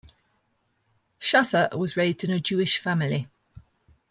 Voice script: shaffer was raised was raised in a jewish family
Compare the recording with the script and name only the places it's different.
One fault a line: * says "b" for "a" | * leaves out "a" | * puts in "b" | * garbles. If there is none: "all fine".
* leaves out "was raised"